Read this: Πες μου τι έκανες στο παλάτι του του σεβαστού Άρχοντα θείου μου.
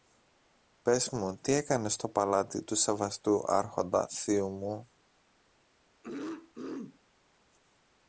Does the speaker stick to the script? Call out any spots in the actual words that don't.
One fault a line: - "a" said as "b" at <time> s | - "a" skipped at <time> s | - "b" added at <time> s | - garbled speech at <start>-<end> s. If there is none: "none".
- "του" skipped at 2.8 s